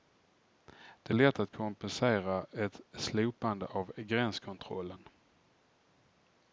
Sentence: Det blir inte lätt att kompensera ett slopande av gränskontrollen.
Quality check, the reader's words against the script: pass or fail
fail